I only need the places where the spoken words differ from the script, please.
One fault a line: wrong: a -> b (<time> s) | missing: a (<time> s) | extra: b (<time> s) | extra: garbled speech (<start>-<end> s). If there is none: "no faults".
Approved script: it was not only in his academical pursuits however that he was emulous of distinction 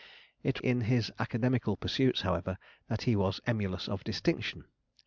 missing: was not only (0.6 s)